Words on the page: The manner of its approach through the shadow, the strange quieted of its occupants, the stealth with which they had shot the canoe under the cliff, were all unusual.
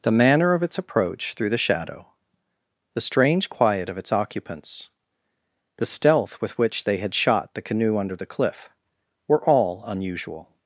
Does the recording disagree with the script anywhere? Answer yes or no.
yes